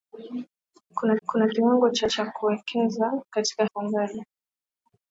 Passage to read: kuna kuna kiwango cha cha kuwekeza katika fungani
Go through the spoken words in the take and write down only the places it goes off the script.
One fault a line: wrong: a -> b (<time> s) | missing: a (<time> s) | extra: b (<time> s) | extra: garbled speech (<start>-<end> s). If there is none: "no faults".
no faults